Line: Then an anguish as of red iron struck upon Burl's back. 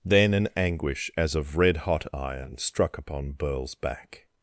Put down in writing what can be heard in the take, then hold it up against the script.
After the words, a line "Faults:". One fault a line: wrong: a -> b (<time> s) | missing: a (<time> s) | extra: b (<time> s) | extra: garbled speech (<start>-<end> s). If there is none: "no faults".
Then an anguish as of red hot iron struck upon Burl's back.
Faults:
extra: hot (1.8 s)